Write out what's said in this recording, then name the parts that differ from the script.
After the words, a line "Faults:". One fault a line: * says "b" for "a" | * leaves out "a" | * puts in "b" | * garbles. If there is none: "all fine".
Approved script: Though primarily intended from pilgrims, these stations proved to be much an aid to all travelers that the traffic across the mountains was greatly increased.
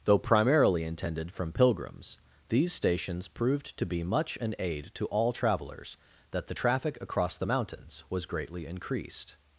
Though primarily intended from pilgrims, these stations proved to be much an aid to all travelers that the traffic across the mountains was greatly increased.
Faults:
all fine